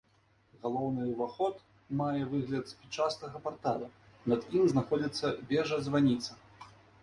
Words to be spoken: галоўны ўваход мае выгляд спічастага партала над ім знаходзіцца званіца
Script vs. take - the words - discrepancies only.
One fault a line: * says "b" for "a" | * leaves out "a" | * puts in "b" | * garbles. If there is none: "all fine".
* puts in "вежа"